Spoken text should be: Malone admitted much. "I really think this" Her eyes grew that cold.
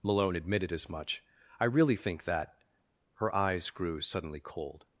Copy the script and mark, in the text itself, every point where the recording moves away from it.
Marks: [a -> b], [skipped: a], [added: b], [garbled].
Malone admitted [added: as] much. "I really think [this" -> that] Her eyes grew [that -> suddenly] cold.